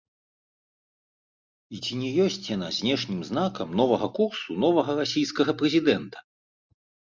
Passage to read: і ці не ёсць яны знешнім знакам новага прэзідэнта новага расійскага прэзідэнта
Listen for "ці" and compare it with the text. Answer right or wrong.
right